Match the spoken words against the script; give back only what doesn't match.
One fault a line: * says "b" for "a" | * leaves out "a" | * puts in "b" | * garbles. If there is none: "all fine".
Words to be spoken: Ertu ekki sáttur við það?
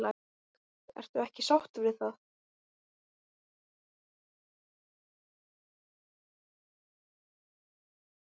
all fine